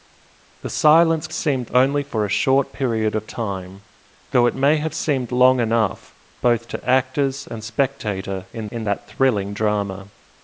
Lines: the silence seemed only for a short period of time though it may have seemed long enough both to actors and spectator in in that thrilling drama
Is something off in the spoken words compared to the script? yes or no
no